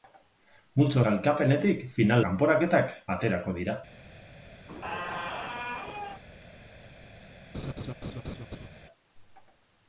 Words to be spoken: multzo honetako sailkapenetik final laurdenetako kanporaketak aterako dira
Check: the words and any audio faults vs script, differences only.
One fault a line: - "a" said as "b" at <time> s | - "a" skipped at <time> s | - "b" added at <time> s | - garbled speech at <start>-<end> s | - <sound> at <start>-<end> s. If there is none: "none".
- "honetako" skipped at 1.0 s
- "laurdenetako" skipped at 2.2 s
- squeak at 4.7-6.2 s
- laugh at 7.5-8.7 s